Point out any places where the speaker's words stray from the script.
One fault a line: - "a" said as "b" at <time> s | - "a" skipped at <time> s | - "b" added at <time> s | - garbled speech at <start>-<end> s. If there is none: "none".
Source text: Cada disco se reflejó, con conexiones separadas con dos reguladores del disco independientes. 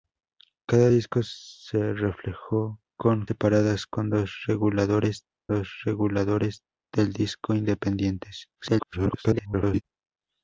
- "conexiones" skipped at 3.2 s
- "dos reguladores" added at 5.5 s
- garbled speech at 8.6-9.8 s